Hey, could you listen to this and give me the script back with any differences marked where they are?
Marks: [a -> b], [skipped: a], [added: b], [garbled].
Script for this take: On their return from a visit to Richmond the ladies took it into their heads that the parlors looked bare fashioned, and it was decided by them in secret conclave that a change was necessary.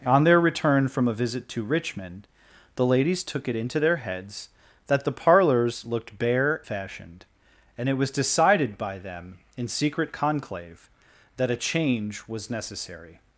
On their return from a visit to Richmond the ladies took it into their heads that the parlors looked bare fashioned, and it was decided by them in secret conclave that a change was necessary.